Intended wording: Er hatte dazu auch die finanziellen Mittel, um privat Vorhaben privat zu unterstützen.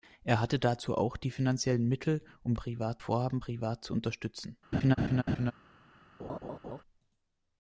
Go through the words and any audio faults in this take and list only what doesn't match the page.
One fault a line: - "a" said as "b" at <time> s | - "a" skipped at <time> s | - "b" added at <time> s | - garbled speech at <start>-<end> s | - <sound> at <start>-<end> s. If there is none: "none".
- laugh at 4.7-5.5 s
- laugh at 6.2-6.8 s